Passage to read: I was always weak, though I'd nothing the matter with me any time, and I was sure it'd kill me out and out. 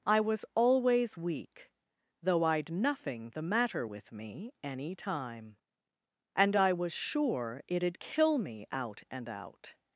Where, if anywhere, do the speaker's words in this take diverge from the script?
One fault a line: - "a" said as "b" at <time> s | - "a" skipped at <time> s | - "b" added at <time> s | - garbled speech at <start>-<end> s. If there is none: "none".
none